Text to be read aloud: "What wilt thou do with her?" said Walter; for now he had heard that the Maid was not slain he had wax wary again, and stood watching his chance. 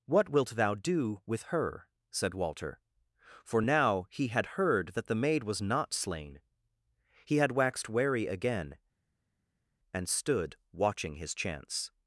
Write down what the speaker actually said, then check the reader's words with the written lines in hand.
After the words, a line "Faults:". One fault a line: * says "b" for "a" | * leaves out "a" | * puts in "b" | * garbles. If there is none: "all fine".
"What wilt thou do with her?" said Walter; for now he had heard that the Maid was not slain he had waxed wary again, and stood watching his chance.
Faults:
* says "waxed" for "wax"